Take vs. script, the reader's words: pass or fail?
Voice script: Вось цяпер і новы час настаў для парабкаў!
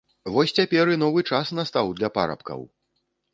pass